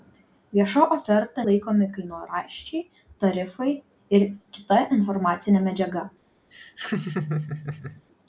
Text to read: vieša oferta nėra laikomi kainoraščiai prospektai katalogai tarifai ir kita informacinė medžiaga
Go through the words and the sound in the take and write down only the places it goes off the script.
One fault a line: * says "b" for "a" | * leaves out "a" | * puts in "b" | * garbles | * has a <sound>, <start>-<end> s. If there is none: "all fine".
* leaves out "nėra"
* leaves out "prospektai katalogai"
* has a laugh, 6.5-8.0 s